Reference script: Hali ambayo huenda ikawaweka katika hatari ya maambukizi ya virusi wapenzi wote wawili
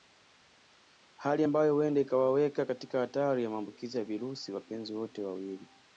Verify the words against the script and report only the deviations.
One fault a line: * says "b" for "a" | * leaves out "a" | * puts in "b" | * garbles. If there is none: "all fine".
all fine